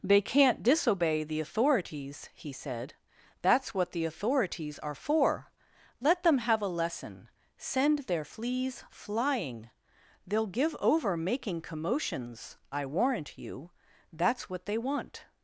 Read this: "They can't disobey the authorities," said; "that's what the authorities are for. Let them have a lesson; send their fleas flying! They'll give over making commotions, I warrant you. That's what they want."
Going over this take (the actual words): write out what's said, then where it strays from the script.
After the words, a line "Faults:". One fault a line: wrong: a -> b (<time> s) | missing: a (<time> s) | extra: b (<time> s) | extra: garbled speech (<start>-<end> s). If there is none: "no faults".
"They can't disobey the authorities," he said; "that's what the authorities are for. Let them have a lesson; send their fleas flying! They'll give over making commotions, I warrant you. That's what they want."
Faults:
extra: he (2.3 s)